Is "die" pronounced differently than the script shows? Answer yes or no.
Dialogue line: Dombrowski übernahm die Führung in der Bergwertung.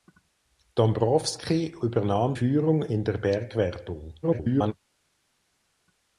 yes